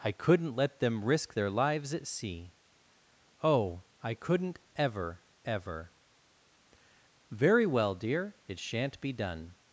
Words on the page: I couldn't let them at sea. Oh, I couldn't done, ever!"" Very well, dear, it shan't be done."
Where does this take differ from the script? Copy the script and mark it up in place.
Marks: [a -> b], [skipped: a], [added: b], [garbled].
I couldn't let them [added: risk their lives] at sea. Oh, I couldn't [done, -> ever] ever!"" Very well, dear, it shan't be done."